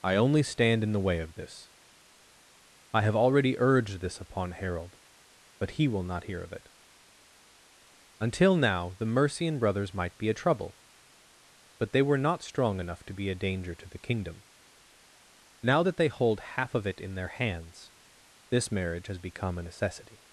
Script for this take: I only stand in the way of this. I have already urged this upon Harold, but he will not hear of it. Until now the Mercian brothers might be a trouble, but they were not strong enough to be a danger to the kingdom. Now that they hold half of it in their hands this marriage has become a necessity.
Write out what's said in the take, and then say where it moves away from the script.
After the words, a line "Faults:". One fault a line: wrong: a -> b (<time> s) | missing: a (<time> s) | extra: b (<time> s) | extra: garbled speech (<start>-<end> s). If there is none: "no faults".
I only stand in the way of this. I have already urged this upon Harold, but he will not hear of it. Until now the Mercian brothers might be a trouble, but they were not strong enough to be a danger to the kingdom. Now that they hold half of it in their hands this marriage has become a necessity.
Faults:
no faults